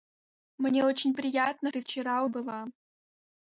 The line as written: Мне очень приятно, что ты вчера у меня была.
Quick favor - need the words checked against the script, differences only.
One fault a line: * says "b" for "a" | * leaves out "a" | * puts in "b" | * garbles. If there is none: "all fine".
* leaves out "что"
* leaves out "меня"